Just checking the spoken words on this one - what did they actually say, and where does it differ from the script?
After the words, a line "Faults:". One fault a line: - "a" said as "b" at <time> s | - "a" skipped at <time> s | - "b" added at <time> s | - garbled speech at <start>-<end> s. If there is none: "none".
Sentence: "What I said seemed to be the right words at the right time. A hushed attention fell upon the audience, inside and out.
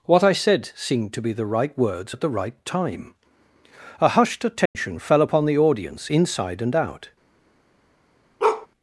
"What I said seemed to be the right words at the right time. A hushed attention fell upon the audience, inside and out.
Faults:
none